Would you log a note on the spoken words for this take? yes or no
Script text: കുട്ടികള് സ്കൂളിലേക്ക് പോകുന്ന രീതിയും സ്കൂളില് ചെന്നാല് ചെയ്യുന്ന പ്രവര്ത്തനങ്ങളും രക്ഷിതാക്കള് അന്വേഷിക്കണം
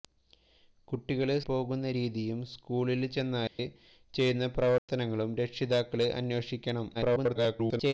yes